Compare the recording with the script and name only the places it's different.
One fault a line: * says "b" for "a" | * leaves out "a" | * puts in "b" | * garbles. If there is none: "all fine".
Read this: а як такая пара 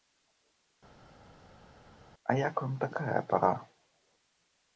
* puts in "вам"